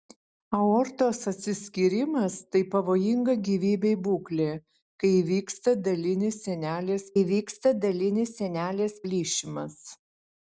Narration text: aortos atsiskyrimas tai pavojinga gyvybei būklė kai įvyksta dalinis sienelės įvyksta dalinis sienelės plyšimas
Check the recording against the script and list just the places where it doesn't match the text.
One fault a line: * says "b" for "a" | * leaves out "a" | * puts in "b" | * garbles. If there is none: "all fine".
all fine